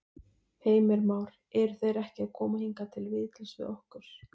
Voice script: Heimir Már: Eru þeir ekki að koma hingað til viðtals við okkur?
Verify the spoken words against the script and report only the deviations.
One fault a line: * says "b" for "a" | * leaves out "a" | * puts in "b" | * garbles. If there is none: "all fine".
all fine